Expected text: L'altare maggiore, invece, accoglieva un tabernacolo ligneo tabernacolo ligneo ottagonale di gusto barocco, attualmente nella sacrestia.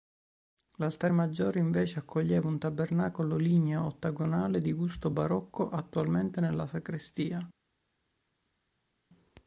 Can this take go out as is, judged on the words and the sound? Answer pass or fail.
fail